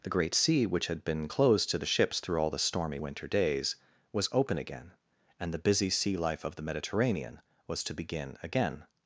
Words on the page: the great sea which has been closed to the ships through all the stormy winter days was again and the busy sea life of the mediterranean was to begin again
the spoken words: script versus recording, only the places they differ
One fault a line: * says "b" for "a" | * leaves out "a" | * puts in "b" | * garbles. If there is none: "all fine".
* says "had" for "has"
* puts in "open"